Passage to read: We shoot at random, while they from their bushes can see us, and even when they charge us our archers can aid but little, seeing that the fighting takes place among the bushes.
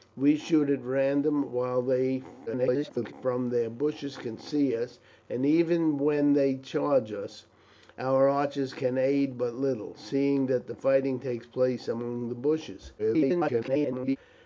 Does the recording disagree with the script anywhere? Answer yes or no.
yes